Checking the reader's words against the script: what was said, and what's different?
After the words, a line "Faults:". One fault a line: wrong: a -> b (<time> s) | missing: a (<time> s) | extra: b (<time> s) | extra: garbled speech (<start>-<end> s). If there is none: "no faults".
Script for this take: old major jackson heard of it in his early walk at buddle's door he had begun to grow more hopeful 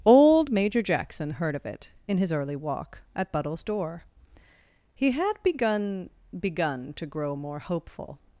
old major jackson heard of it in his early walk at buddle's door he had begun begun to grow more hopeful
Faults:
extra: begun (6.4 s)